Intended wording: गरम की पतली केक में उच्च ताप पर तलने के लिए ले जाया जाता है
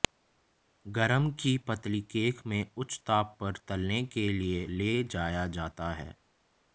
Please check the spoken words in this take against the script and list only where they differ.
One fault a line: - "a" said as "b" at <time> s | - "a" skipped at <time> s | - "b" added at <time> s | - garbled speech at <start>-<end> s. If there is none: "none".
none